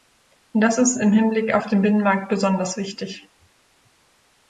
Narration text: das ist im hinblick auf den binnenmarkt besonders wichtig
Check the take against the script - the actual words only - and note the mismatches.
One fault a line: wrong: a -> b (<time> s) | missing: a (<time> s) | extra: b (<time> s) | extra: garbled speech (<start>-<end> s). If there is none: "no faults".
no faults